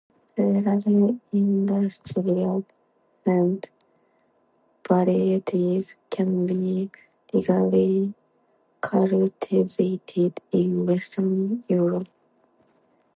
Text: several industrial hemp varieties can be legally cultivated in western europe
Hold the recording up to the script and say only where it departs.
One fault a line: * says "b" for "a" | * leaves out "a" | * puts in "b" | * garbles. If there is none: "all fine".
all fine